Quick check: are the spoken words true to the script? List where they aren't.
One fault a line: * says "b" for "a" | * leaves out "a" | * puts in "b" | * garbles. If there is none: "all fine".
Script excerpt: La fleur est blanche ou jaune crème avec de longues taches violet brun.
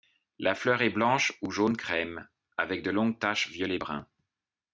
all fine